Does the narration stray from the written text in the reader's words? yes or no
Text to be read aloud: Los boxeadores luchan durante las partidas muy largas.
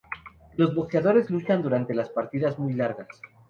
no